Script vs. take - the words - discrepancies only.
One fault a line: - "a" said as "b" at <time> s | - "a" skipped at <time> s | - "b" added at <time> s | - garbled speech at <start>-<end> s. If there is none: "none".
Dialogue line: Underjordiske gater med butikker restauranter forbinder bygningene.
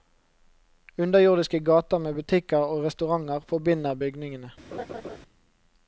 - "og" added at 2.6 s